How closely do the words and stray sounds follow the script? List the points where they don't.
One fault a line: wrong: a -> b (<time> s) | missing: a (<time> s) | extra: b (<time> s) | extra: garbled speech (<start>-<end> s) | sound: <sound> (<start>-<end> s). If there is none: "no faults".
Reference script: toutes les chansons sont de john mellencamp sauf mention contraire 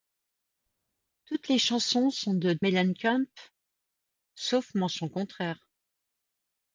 missing: john (2.6 s)